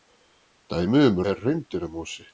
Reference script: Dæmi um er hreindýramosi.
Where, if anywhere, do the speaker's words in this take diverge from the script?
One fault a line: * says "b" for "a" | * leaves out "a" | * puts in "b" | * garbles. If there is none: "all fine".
all fine